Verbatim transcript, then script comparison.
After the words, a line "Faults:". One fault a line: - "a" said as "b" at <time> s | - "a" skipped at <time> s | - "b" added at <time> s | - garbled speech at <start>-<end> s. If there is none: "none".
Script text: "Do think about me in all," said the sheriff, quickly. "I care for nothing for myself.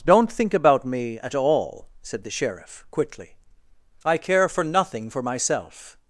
"Don't think about me at all," said the sheriff, quickly. "I care for nothing for myself.
Faults:
- "Do" said as "Don't" at 0.1 s
- "in" said as "at" at 1.2 s